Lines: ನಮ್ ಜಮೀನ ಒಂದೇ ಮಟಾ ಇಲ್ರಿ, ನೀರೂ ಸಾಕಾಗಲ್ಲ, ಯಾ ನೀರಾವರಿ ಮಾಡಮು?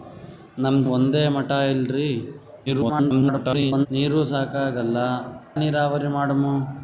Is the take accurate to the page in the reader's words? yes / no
no